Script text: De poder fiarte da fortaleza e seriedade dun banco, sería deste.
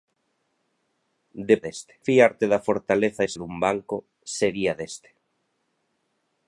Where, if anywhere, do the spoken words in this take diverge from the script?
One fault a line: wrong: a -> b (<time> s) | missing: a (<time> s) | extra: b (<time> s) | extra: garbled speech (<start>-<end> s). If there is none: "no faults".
wrong: poder -> deste (1.6 s)
missing: seriedade (3.3 s)